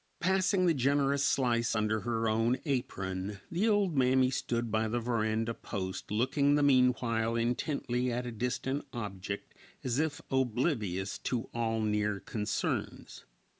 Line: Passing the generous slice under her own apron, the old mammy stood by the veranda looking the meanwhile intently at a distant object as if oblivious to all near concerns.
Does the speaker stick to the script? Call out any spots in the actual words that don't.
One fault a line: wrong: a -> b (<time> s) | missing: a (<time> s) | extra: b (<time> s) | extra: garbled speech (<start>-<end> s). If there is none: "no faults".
extra: post (5.5 s)